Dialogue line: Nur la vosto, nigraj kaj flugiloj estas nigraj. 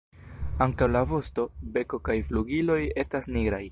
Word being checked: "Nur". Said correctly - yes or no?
no